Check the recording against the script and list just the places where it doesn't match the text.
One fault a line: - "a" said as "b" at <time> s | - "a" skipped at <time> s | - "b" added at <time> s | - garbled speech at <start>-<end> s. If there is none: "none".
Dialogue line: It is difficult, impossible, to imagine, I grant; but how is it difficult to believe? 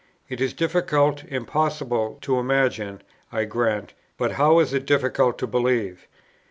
none